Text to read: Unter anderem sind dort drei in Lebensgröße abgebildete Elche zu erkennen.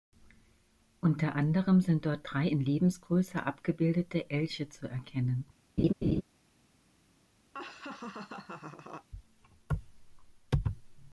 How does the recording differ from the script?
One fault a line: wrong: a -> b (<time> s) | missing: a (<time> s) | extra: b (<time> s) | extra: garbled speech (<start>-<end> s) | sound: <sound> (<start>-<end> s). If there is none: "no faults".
sound: laugh (5.8-6.2 s)
sound: laugh (7.5-9.1 s)